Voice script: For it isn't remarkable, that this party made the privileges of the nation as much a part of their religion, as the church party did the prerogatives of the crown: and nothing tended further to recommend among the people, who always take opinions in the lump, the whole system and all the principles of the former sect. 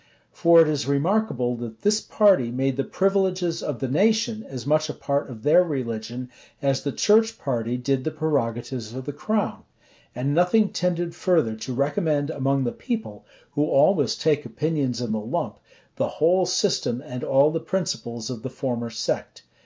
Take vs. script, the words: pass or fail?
fail